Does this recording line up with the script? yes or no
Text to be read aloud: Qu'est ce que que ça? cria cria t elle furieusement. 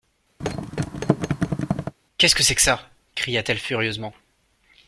no